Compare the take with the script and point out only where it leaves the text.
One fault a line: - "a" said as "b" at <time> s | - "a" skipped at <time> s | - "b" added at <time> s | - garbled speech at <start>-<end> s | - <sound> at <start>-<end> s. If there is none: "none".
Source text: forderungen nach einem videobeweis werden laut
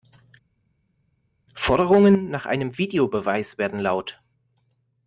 none